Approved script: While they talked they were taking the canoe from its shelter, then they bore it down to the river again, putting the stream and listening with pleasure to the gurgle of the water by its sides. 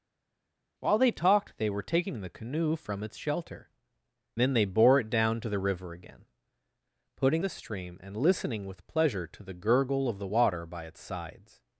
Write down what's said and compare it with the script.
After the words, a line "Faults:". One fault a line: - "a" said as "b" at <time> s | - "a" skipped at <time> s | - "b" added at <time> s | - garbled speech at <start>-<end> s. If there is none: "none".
While they talked they were taking the canoe from its shelter, then they bore it down to the river again, putting the stream and listening with pleasure to the gurgle of the water by its sides.
Faults:
none